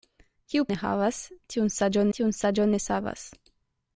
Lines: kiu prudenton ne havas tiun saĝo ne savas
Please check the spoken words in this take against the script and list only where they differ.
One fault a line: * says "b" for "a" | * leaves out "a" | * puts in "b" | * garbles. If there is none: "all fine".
* leaves out "prudenton"
* puts in "tiun saĝo"